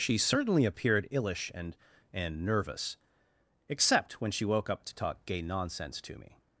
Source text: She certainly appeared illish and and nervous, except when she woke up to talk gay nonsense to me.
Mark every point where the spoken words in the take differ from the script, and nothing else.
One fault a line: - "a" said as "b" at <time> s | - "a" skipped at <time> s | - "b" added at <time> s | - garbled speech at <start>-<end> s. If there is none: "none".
none